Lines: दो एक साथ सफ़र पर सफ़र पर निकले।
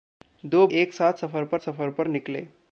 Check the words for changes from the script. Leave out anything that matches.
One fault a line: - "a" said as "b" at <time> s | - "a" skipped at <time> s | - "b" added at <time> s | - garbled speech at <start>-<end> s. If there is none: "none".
none